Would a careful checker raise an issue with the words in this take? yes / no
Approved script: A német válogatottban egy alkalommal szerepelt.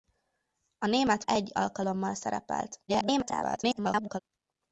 yes